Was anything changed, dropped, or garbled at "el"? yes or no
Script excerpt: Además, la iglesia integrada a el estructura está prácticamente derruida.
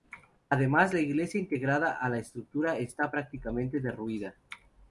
yes